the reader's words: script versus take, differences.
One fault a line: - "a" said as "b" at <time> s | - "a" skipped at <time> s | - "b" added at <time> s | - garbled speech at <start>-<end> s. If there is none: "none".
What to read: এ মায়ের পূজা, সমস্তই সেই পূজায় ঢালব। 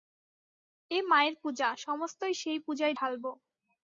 none